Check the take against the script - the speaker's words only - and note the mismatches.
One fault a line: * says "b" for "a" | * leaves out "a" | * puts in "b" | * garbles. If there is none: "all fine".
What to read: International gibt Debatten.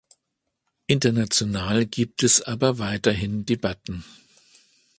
* puts in "es aber weiterhin"